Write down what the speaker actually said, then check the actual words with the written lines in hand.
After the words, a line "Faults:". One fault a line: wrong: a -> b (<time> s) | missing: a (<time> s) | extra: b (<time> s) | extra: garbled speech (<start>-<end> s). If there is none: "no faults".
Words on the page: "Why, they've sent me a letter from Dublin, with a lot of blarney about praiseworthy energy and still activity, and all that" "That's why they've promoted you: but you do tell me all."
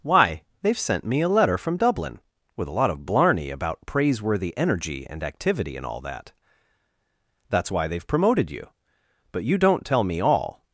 "Why, they've sent me a letter from Dublin, with a lot of blarney about praiseworthy energy and activity, and all that" "That's why they've promoted you: but you don't tell me all."
Faults:
missing: still (5.2 s)
wrong: do -> don't (9.6 s)